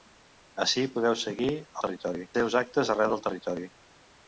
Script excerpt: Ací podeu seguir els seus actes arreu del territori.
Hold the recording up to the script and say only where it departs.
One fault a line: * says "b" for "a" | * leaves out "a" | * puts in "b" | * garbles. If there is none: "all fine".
* says "territori" for "els"